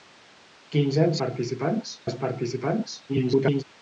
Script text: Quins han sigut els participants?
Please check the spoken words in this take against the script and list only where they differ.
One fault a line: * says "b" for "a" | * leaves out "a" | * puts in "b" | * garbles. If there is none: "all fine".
* says "participants" for "sigut"
* garbles